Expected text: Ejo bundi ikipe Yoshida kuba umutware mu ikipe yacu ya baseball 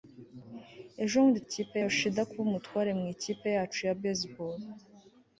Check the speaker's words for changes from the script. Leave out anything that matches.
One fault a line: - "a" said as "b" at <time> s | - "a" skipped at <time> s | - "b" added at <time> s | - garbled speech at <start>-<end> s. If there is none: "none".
none